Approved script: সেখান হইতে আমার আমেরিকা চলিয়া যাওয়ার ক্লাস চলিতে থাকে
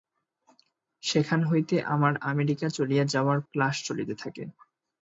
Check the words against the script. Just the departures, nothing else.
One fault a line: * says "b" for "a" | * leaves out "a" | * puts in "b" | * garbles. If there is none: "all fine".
all fine